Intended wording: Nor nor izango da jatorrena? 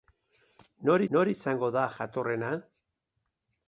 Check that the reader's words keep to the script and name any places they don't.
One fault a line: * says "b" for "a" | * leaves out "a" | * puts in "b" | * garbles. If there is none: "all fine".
all fine